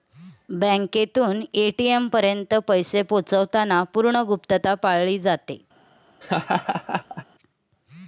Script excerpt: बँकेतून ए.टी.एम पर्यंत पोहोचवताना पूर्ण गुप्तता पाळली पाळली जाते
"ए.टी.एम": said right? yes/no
yes